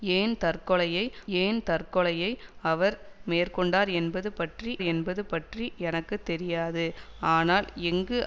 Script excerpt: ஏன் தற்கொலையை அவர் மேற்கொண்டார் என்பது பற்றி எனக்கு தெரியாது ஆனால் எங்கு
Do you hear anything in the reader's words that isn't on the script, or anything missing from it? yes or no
yes